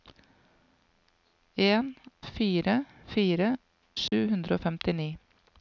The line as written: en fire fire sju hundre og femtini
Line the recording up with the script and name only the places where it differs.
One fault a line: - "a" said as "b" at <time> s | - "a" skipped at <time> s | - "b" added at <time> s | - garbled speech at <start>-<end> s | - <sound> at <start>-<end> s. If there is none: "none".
- dropout at 4.1-4.1 s